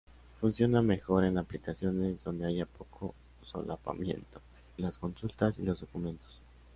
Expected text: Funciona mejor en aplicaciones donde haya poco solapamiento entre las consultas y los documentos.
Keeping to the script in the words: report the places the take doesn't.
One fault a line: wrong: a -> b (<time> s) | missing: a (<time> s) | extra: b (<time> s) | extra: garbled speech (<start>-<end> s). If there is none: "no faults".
missing: entre (4.4 s)